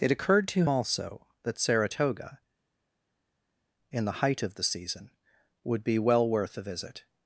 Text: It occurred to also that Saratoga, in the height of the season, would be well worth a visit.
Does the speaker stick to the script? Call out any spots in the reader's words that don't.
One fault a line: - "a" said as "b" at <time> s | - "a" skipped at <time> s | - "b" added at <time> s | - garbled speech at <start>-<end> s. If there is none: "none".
none